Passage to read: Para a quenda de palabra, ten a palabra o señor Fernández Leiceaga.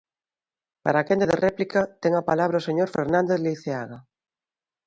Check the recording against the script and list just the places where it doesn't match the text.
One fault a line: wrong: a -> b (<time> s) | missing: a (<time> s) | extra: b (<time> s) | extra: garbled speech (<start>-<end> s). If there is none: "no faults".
wrong: palabra -> réplica (1.4 s)